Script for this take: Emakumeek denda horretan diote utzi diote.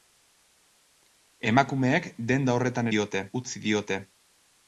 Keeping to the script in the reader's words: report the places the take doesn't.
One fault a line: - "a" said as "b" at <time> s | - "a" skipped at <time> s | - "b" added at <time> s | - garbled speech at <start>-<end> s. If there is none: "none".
none